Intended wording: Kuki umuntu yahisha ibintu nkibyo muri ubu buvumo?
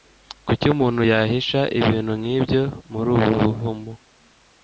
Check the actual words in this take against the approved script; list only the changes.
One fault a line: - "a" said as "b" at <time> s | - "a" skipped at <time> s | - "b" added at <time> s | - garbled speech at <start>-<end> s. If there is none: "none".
none